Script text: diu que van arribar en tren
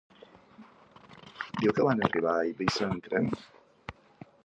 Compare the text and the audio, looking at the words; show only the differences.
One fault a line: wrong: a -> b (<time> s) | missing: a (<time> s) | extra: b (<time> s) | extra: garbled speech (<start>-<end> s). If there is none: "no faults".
extra: a eivissa (2.4 s)